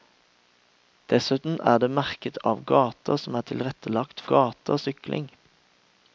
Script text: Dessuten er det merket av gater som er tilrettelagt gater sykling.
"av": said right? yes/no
yes